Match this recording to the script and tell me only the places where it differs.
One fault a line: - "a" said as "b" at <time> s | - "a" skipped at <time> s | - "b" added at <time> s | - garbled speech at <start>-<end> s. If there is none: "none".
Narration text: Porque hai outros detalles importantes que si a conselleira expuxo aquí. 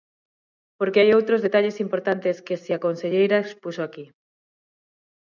none